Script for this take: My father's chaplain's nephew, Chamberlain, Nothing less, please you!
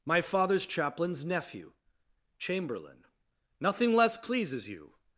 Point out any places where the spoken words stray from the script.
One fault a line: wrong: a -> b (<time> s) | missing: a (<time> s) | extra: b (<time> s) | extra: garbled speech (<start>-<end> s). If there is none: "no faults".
wrong: please -> pleases (4.1 s)